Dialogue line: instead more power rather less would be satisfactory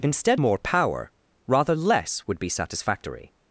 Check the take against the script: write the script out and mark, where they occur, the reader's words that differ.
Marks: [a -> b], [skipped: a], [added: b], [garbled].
instead more power rather less would be satisfactory